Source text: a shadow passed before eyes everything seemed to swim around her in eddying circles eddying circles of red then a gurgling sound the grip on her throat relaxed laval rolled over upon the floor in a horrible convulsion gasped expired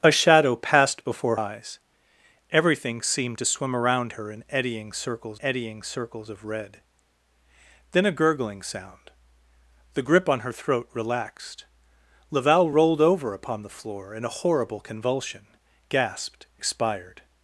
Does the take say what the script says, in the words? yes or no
yes